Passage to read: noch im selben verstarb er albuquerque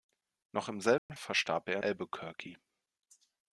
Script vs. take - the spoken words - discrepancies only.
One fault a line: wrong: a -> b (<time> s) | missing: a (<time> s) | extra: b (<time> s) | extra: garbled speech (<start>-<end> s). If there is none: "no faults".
no faults